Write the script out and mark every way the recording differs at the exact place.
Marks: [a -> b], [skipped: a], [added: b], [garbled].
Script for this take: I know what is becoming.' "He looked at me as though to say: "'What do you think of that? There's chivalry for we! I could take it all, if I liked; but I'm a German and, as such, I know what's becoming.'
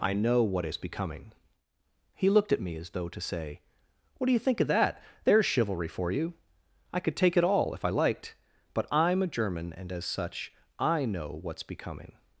I know what is becoming.' "He looked at me as though to say: "'What do you think of that? There's chivalry for [we! -> you] I could take it all, if I liked; but I'm a German and, as such, I know what's becoming.'